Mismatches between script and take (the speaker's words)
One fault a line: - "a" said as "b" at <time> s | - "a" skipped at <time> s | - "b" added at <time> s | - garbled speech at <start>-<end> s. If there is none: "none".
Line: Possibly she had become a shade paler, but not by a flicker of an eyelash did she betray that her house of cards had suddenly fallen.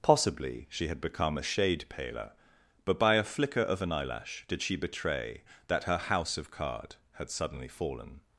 - "not" skipped at 3.0 s
- "cards" said as "card" at 6.5 s